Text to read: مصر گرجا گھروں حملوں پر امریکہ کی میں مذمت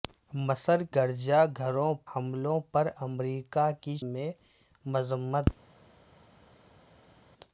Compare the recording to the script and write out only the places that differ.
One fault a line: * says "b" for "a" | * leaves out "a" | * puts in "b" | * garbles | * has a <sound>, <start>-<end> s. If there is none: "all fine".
all fine